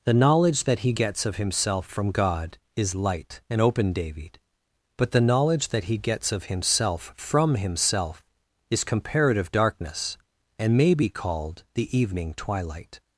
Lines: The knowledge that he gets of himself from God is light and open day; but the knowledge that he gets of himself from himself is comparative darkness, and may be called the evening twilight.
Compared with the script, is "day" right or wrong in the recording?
wrong